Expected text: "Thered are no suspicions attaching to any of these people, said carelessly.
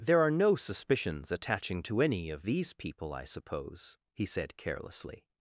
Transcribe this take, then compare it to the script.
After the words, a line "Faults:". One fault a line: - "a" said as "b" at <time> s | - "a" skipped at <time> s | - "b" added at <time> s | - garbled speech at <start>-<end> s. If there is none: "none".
"There are no suspicions attaching to any of these people, I suppose?" he said carelessly.
Faults:
- "Thered" said as "There" at 0.0 s
- "I suppose he" added at 3.1 s